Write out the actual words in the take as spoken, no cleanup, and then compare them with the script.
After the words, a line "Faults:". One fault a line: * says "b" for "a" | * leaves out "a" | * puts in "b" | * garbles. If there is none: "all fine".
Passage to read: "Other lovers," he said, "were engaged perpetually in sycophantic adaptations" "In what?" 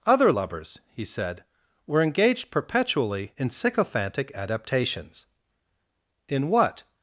"Other lovers," he said, "were engaged perpetually in sycophantic adaptations" "In what?"
Faults:
all fine